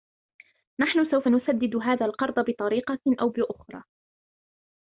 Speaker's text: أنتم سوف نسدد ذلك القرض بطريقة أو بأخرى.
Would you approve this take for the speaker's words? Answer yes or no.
no